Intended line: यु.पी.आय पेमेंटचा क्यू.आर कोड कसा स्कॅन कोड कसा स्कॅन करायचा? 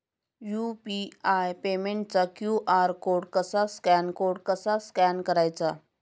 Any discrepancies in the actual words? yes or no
no